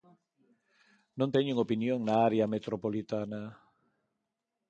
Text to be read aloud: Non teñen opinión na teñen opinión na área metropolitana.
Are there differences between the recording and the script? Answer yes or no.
yes